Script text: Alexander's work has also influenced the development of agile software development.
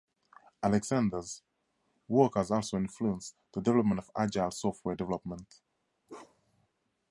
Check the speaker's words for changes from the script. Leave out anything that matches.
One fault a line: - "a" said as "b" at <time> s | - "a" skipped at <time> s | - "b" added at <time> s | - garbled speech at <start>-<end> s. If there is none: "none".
none